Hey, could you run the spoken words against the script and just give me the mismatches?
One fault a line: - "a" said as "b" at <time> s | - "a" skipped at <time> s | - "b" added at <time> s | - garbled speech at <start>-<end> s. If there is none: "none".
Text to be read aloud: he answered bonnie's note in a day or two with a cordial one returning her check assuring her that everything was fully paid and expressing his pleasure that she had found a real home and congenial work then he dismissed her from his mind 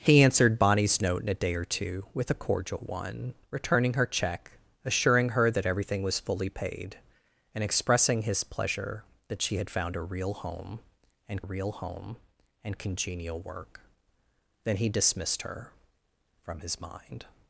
- "real home and" added at 11.4 s